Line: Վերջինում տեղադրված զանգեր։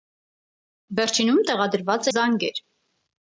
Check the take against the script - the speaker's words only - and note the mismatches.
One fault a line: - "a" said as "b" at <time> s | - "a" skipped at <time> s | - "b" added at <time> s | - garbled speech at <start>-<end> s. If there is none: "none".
none